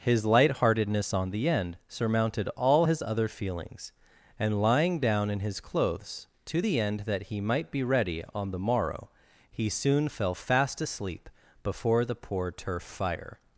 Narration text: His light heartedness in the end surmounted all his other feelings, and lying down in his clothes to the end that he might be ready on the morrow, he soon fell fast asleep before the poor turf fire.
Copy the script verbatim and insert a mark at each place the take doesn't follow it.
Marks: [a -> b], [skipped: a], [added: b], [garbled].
His light heartedness [in -> on] the end surmounted all his other feelings, and lying down in his clothes to the end that he might be ready on the morrow, he soon fell fast asleep before the poor turf fire.